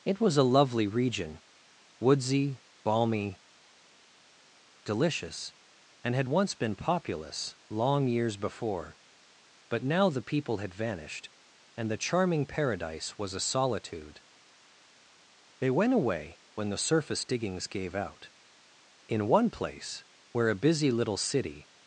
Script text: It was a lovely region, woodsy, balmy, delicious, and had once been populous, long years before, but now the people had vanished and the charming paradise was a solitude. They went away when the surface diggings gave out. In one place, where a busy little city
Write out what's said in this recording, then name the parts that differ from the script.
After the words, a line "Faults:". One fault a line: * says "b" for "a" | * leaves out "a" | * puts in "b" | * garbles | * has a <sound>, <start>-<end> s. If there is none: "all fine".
It was a lovely region, woodsy, balmy, delicious, and had once been populous, long years before, but now the people had vanished and the charming paradise was a solitude. They went away when the surface diggings gave out. In one place, where a busy little city
Faults:
all fine